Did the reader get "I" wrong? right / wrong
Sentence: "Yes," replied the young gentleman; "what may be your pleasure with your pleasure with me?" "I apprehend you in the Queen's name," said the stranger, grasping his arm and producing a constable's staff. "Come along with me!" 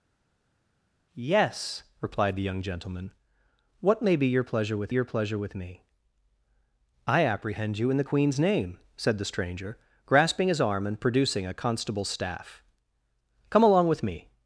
right